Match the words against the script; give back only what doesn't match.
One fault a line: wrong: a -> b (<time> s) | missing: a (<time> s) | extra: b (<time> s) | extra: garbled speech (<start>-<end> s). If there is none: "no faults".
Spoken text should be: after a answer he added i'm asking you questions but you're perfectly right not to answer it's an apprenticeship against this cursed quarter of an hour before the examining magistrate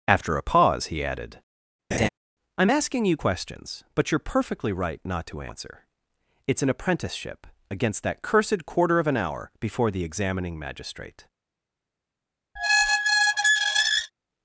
wrong: answer -> pause (0.4 s)
wrong: this -> that (8.0 s)